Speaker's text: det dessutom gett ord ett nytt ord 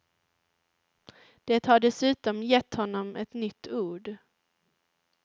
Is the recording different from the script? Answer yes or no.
yes